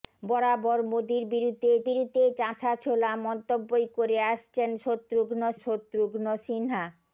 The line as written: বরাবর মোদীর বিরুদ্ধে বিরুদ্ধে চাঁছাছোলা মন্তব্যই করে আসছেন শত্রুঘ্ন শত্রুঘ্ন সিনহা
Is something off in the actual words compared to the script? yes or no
no